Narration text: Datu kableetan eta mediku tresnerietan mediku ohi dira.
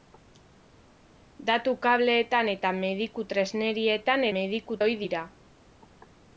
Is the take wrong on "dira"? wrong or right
right